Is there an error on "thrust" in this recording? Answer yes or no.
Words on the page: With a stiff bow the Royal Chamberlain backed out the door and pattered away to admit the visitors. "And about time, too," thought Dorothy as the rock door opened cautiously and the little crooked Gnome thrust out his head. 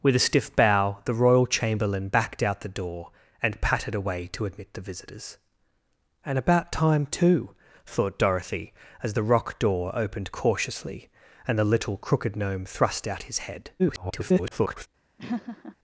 no